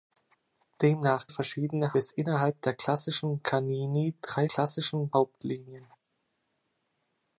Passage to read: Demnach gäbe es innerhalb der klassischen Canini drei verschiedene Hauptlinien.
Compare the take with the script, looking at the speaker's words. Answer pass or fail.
fail